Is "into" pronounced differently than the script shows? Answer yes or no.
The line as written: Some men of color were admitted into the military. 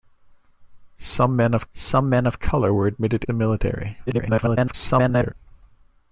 yes